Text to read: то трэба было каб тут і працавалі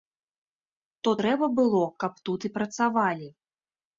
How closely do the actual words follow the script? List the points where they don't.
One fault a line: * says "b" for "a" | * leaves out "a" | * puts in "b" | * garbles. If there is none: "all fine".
all fine